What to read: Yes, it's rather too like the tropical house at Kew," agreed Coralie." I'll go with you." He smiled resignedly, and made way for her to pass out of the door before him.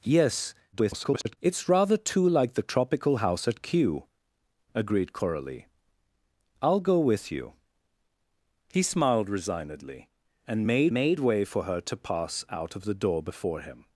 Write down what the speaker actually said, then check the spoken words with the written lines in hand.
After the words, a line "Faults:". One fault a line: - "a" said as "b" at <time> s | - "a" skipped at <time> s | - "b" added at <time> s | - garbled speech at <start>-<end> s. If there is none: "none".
Yes, [garbled] it's rather too like the tropical house at Kew," agreed Coralie." I'll go with you." He smiled resignedly, and made made way for her to pass out of the door before him.
Faults:
- garbled speech at 0.7-1.4 s
- "made" added at 10.9 s